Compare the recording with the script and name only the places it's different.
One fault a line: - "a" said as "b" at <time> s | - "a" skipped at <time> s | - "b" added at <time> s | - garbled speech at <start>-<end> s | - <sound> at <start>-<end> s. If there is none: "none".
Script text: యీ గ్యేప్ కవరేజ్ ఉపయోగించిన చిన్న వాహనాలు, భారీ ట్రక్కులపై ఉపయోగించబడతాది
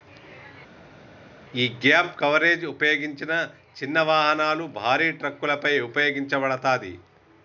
none